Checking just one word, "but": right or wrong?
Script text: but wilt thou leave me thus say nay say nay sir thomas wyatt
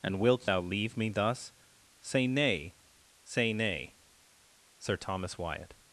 wrong